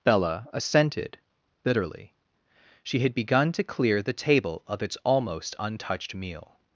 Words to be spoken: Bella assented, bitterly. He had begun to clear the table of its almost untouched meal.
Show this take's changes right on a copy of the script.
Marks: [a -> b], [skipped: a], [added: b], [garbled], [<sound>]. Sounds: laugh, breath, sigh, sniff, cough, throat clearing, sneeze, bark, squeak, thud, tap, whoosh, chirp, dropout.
Bella assented, bitterly. [He -> She] had begun to clear the table of its almost untouched meal.